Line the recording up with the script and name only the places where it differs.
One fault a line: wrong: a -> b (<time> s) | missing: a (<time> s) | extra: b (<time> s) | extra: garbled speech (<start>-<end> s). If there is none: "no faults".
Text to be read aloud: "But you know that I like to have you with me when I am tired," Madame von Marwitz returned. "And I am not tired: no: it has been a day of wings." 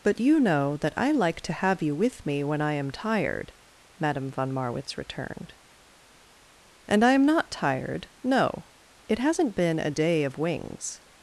wrong: has -> hasn't (9.2 s)